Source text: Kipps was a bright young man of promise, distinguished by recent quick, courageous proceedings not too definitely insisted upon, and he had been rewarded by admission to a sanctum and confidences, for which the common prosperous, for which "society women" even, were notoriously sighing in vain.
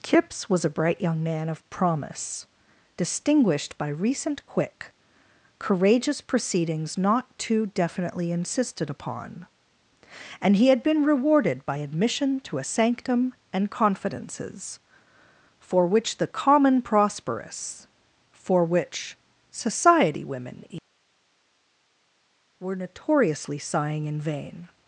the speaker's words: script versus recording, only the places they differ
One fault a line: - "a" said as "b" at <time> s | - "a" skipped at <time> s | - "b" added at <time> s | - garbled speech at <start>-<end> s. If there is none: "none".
- "even" skipped at 20.6 s